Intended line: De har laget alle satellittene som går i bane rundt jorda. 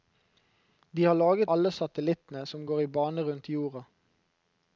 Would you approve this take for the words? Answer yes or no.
yes